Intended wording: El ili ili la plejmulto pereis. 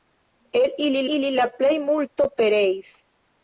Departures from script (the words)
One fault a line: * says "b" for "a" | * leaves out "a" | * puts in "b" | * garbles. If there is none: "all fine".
all fine